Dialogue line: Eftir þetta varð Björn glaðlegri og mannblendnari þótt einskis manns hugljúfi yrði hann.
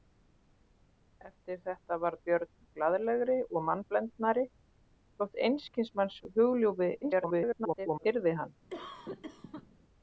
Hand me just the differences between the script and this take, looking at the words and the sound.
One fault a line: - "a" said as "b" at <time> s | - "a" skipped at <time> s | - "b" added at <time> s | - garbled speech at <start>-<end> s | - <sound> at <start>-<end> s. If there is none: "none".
- garbled speech at 7.0-8.1 s
- cough at 8.7-9.7 s